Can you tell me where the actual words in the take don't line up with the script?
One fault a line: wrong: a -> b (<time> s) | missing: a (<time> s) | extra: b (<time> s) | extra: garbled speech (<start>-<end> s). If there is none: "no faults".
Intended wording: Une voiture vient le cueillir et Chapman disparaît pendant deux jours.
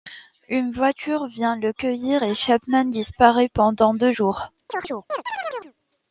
no faults